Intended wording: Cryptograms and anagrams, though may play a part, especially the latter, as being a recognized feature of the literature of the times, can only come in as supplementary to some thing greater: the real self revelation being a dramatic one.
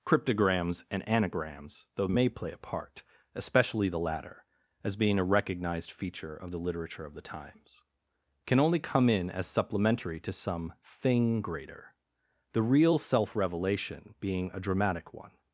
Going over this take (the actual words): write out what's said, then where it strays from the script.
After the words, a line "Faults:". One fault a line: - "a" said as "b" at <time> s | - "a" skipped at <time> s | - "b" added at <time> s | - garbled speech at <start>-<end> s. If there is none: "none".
Cryptograms and anagrams, though may play a part, especially the latter, as being a recognized feature of the literature of the times, can only come in as supplementary to some thing greater: the real self revelation being a dramatic one.
Faults:
none